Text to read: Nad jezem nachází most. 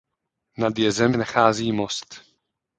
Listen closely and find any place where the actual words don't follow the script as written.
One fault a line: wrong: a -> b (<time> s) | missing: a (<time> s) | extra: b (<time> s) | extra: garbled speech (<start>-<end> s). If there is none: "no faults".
no faults